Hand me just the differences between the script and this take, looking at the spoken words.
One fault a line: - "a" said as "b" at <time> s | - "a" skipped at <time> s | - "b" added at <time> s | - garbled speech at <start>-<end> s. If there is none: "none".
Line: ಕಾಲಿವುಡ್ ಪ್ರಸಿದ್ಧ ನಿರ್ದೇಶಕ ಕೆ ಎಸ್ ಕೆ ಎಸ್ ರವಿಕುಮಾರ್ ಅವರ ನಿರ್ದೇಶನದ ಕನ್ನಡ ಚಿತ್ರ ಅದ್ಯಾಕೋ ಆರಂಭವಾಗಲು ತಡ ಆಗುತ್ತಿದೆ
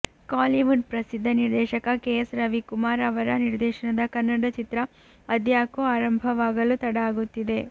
- "ಕೆ ಎಸ್" skipped at 2.3 s